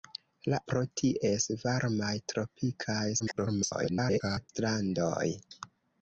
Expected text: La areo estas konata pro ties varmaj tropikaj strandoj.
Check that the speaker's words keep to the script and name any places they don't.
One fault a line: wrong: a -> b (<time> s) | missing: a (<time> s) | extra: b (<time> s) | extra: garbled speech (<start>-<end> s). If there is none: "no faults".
missing: areo estas konata (0.6 s)
extra: garbled speech (3.2-4.5 s)